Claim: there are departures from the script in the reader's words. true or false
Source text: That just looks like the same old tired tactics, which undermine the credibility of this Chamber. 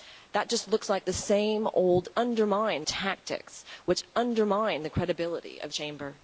true